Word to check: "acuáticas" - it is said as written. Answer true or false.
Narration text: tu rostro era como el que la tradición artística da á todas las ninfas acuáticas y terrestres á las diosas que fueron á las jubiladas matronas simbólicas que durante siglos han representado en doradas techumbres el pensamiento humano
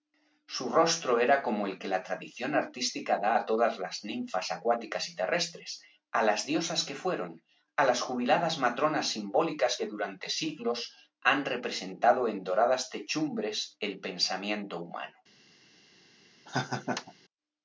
true